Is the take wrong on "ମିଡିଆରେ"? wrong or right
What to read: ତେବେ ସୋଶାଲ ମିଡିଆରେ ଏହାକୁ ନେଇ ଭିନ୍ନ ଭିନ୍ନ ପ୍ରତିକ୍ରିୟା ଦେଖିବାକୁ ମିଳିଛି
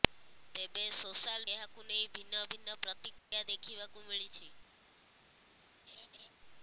wrong